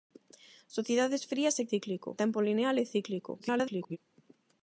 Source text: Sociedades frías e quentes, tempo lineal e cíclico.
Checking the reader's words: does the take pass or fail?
fail